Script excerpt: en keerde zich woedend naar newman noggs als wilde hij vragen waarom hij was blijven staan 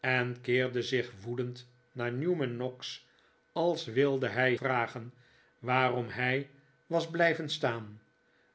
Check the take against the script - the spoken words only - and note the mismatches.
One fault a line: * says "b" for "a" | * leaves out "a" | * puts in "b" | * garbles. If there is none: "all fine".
all fine